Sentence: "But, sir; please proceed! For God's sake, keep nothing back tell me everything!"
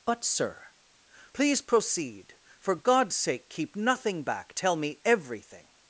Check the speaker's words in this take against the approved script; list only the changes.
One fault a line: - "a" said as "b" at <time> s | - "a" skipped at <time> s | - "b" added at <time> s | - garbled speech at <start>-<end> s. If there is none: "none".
none